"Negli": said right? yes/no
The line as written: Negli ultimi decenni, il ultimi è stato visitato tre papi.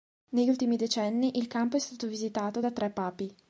yes